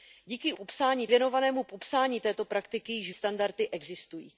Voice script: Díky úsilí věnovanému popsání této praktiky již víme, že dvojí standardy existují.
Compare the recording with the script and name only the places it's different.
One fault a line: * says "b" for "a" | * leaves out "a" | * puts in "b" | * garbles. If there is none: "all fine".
* says "popsání" for "úsilí"
* leaves out "víme že dvojí"